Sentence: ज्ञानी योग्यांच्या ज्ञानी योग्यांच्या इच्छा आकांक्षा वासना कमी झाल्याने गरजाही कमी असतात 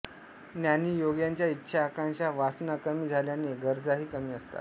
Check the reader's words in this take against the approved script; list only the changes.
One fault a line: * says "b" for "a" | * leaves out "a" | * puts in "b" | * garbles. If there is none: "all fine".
* leaves out "ज्ञानी योग्यांच्या"